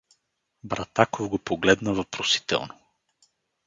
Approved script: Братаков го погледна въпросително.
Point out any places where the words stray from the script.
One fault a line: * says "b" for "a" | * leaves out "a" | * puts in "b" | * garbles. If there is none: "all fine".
all fine